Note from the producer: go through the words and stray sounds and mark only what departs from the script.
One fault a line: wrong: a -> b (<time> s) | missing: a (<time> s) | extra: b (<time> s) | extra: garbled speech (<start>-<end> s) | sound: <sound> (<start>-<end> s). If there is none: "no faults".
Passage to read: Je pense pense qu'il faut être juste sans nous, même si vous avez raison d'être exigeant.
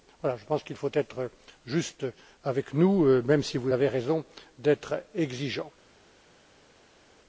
missing: pense (0.6 s)
wrong: sans -> avec (2.4 s)